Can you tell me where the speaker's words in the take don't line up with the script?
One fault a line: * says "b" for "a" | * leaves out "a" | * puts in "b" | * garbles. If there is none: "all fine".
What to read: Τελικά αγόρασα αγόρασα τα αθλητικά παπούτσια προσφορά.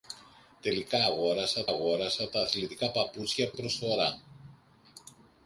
all fine